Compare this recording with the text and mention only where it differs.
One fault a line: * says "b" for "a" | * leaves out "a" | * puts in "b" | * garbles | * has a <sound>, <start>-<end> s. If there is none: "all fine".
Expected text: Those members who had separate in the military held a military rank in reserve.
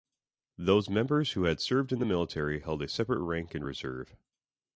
* says "served" for "separate"
* says "separate" for "military"